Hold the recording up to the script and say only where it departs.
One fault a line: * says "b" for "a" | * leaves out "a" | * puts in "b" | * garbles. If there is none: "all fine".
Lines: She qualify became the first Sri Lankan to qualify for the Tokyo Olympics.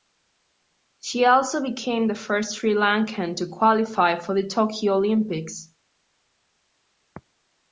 * says "also" for "qualify"